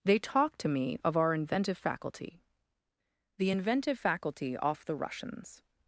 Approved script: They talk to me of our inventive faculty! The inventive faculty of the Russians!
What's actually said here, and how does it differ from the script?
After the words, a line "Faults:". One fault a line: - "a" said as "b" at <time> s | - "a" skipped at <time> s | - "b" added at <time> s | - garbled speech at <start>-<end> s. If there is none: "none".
They talk to me of our inventive faculty! The inventive faculty off the Russians!
Faults:
- "of" said as "off" at 4.6 s